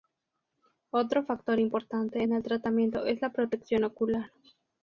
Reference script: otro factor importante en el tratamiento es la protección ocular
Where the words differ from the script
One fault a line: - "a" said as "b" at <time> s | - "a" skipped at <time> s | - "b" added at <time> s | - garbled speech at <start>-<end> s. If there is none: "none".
none